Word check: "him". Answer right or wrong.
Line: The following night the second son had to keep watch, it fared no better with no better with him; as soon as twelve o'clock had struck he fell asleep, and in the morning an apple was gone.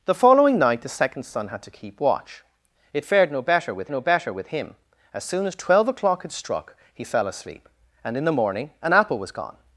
right